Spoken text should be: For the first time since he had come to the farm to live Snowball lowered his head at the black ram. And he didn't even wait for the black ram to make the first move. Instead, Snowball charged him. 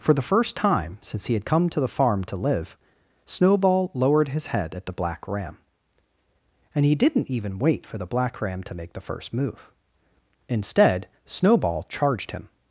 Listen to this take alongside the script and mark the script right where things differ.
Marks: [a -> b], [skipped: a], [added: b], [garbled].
For the first time since he had come to the farm to live Snowball lowered his head at the black ram. And he didn't even wait for the black ram to make the first move. Instead, Snowball charged him.